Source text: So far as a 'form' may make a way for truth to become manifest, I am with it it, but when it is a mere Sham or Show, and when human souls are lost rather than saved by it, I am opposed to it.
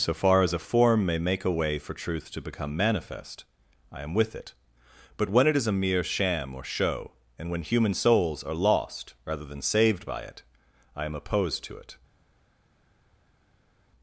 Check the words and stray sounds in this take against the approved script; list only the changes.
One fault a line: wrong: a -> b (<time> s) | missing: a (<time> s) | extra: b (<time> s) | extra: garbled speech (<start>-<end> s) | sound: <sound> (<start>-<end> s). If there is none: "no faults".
missing: it (4.5 s)